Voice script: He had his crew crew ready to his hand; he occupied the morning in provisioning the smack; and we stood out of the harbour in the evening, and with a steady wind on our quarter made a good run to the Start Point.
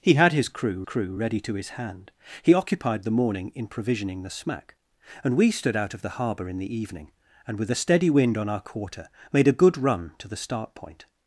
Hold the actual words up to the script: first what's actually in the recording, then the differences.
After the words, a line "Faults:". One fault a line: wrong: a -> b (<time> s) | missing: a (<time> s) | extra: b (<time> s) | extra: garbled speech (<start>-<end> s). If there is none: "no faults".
He had his crew crew ready to his hand; he occupied the morning in provisioning the smack; and we stood out of the harbour in the evening, and with a steady wind on our quarter made a good run to the Start Point.
Faults:
no faults